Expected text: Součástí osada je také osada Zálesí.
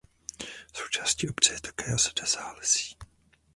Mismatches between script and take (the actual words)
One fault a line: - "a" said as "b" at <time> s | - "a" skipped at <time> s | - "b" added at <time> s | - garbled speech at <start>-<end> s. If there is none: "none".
- "osada" said as "obce" at 1.3 s